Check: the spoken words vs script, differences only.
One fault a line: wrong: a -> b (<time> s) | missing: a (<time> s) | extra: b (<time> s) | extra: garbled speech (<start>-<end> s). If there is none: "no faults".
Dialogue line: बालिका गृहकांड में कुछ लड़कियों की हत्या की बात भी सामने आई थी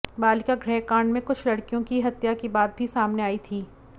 no faults